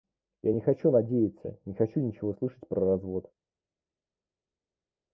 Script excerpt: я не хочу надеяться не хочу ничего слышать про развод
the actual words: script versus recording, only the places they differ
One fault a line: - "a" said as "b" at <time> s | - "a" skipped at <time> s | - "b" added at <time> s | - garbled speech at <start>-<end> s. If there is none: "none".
none